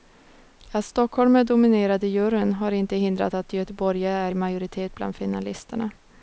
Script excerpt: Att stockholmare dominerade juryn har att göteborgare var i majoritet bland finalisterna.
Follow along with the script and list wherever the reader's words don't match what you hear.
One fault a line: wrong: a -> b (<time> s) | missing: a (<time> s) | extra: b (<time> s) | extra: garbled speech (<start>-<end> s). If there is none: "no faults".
extra: inte hindrat (2.7 s)
wrong: var -> är (4.2 s)